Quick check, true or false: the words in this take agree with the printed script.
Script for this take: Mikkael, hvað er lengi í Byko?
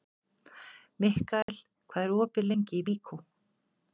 false